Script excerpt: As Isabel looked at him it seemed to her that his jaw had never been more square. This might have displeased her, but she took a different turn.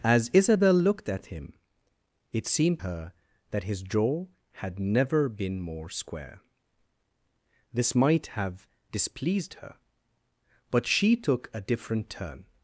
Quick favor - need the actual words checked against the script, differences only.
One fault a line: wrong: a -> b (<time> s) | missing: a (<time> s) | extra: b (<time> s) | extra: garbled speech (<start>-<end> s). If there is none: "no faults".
missing: to (2.8 s)